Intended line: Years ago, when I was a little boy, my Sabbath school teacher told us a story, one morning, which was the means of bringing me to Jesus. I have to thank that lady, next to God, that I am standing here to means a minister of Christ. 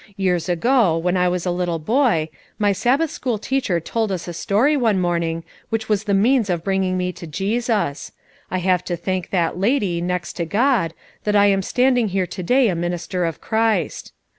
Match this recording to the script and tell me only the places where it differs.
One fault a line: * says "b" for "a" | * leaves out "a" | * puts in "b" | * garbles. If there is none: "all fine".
* says "day" for "means"